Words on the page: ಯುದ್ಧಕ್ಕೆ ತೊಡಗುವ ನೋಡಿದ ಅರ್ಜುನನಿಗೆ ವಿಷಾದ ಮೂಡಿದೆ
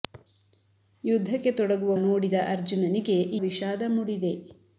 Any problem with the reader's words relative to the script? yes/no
no